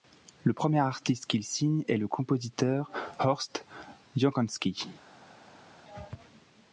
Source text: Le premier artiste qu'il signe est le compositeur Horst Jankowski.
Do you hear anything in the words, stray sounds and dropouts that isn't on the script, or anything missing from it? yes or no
no